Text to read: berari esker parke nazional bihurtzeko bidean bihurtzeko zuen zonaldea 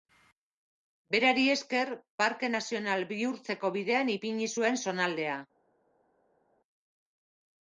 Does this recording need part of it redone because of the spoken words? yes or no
yes